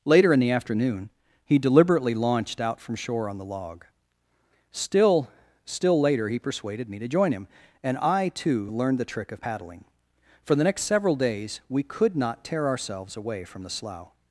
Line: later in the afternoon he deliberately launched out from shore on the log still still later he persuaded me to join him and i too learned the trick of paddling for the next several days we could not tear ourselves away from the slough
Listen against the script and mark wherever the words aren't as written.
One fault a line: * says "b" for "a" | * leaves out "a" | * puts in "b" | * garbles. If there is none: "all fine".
all fine